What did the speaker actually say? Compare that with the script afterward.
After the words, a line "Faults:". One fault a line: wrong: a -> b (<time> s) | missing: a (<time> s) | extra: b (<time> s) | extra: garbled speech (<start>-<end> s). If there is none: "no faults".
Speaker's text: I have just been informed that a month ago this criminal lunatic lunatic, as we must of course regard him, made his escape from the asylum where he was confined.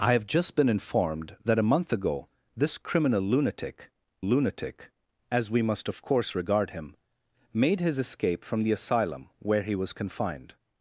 I have just been informed that a month ago this criminal lunatic lunatic, as we must of course regard him, made his escape from the asylum where he was confined.
Faults:
no faults